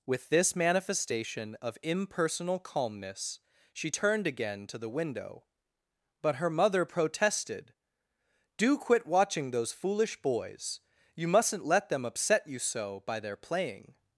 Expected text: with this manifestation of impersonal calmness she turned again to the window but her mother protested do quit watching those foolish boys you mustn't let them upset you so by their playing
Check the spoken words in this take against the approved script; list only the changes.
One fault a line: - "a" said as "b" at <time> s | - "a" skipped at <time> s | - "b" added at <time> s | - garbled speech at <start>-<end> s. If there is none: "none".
none